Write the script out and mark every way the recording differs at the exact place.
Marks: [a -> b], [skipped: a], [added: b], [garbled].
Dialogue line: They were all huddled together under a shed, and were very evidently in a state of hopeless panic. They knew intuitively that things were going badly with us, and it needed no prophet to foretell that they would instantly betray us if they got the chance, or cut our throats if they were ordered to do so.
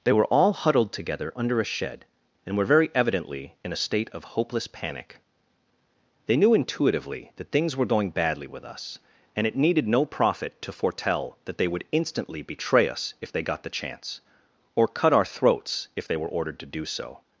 They were all huddled together under a shed, and were very evidently in a state of hopeless panic. They knew intuitively that things were going badly with us, and it needed no prophet to foretell that they would instantly betray us if they got the chance, or cut our throats if they were ordered to do so.